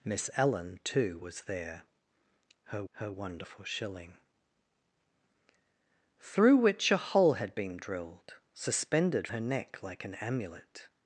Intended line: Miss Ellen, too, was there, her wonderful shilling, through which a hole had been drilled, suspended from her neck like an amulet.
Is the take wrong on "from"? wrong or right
wrong